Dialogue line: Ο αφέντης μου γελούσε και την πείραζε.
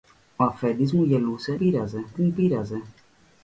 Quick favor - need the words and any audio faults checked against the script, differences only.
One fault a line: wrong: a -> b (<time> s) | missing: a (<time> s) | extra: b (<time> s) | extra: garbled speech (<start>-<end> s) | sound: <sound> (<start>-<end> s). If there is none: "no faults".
wrong: και -> πείραζε (1.6 s)